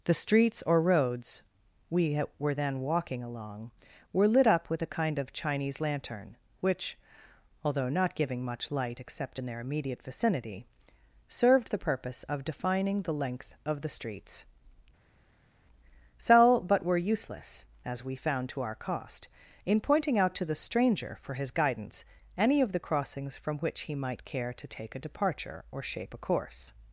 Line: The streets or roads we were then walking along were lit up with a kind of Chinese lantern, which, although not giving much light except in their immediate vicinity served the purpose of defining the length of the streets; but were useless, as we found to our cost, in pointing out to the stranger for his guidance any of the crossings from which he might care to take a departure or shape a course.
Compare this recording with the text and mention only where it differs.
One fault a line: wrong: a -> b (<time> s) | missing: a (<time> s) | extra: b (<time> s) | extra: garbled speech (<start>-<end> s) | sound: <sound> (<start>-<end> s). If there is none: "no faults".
extra: sell (16.2 s)